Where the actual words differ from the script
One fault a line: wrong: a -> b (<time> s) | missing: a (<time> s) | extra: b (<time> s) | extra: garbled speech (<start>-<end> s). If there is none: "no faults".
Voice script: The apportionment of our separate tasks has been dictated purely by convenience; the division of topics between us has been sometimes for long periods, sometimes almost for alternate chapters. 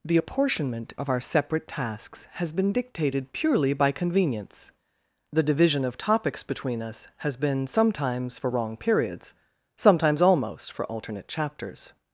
wrong: long -> wrong (8.5 s)